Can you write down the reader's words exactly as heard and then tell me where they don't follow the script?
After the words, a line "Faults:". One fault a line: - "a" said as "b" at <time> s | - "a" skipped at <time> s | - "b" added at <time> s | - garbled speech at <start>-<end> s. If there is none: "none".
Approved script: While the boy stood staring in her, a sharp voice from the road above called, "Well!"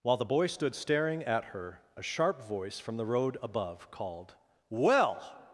While the boy stood staring at her, a sharp voice from the road above called, "Well!"
Faults:
- "in" said as "at" at 1.2 s